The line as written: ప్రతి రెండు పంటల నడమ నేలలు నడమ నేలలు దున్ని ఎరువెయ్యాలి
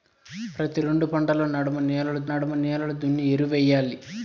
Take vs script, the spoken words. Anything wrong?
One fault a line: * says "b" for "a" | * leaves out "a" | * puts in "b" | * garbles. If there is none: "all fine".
all fine